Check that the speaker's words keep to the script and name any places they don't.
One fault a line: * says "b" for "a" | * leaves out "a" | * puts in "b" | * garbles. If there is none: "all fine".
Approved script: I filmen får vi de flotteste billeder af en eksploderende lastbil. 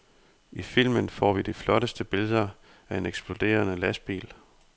all fine